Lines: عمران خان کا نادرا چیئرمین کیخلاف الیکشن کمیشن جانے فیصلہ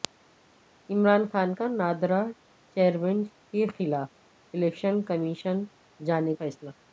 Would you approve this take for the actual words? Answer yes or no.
yes